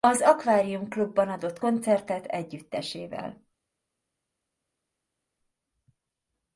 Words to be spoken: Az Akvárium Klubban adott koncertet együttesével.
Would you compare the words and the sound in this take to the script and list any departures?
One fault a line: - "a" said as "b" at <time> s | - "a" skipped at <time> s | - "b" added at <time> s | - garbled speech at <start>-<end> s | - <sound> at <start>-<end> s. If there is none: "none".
none